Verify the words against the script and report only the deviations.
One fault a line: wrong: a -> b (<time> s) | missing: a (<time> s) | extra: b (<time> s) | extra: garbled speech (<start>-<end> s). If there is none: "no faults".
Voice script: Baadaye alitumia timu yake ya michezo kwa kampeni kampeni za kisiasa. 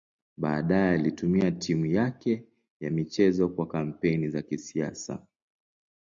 missing: kampeni (4.3 s)